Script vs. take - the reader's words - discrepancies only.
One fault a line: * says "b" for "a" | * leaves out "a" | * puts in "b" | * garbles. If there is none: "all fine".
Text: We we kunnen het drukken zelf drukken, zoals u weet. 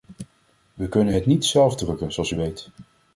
* leaves out "we"
* says "niet" for "drukken"